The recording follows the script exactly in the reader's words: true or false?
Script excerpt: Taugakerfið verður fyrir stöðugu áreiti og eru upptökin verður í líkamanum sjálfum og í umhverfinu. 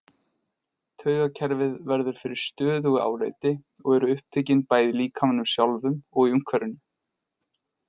false